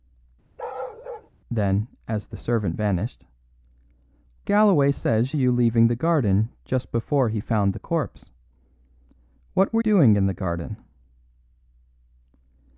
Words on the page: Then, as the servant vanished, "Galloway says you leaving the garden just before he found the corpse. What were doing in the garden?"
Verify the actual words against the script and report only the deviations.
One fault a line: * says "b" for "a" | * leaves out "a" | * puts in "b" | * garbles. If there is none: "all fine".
all fine